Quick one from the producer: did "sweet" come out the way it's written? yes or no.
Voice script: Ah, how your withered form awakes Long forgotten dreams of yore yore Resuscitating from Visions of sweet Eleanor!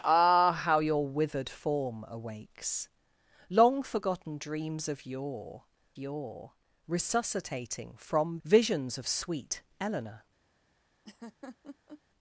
yes